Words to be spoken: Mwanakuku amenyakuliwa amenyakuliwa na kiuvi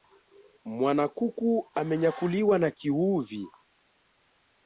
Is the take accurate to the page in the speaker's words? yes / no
no